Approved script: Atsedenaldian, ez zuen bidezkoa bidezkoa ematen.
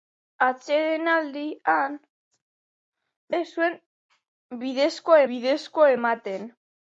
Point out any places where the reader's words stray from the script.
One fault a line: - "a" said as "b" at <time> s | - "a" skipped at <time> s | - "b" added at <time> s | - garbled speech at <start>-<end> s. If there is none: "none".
none